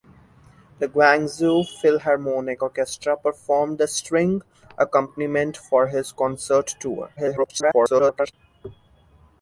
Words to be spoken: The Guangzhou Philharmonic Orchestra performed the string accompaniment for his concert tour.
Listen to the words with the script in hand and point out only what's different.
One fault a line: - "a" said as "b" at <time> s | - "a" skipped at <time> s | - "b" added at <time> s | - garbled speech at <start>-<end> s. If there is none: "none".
- garbled speech at 7.2-8.3 s